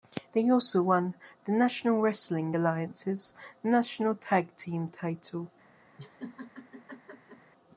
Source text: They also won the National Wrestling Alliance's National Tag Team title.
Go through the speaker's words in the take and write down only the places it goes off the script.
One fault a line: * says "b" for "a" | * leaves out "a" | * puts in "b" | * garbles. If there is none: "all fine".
all fine